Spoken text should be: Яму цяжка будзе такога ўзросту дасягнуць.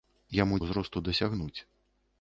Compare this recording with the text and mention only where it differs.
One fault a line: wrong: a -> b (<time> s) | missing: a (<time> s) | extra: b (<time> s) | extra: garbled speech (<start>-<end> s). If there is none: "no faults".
missing: цяжка будзе такога (0.6 s)